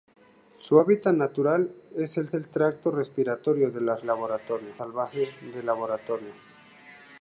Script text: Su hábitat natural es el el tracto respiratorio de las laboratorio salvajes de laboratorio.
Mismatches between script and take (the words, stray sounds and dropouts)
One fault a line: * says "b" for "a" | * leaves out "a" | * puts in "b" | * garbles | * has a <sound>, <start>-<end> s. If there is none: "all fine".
all fine